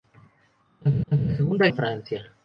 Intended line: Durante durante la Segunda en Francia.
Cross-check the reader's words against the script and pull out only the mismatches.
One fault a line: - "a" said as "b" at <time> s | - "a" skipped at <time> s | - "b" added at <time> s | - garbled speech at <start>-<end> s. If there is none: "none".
none